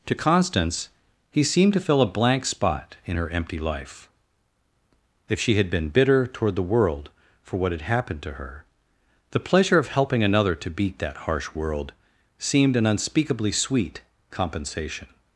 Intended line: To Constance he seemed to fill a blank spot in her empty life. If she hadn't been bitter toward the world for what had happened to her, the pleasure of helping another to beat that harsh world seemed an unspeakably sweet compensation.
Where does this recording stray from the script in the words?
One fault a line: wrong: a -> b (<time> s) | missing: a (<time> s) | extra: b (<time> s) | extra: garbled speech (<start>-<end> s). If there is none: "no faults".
wrong: hadn't -> had (5.6 s)